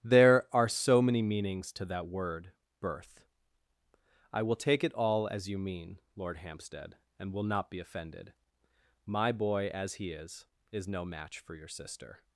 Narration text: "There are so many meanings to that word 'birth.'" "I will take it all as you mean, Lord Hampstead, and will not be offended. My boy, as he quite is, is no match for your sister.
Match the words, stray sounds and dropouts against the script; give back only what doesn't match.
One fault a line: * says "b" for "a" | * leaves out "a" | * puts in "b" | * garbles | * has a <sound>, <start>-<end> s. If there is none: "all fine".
* leaves out "quite"